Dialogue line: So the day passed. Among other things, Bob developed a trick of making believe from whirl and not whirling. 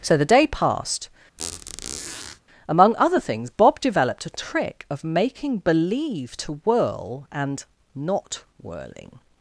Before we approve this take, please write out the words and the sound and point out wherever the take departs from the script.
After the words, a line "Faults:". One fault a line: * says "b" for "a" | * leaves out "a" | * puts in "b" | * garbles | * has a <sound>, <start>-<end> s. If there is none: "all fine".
So the day passed. Among other things, Bob developed a trick of making believe to whirl and not whirling.
Faults:
* has a squeak, 1.4-2.4 s
* says "to" for "from"